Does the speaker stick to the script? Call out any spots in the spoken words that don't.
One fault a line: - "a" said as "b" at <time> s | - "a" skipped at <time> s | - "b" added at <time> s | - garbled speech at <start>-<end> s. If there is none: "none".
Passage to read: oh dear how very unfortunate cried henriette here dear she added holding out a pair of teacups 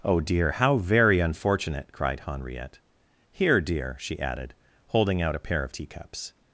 none